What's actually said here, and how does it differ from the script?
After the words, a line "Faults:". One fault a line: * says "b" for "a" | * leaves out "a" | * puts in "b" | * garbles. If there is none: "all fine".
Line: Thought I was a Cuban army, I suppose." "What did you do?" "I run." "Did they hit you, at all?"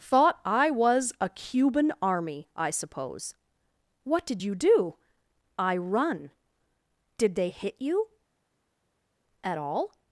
Thought I was a Cuban army, I suppose." "What did you do?" "I run." "Did they hit you, at all?"
Faults:
all fine